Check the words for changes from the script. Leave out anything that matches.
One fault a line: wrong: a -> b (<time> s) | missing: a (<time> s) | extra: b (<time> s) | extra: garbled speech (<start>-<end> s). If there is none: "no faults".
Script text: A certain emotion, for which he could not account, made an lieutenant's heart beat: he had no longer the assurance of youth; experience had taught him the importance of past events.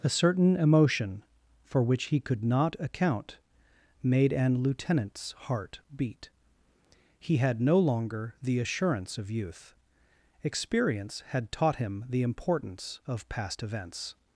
no faults